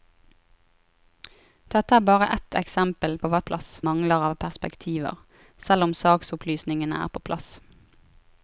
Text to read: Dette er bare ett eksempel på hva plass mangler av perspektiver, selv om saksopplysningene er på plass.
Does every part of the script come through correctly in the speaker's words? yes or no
yes